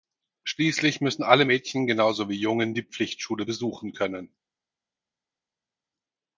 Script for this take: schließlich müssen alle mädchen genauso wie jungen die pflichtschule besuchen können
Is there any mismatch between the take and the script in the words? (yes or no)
no